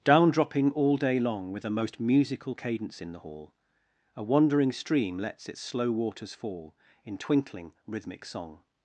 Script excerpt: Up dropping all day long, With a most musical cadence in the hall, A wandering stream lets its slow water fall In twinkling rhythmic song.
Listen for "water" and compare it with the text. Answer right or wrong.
wrong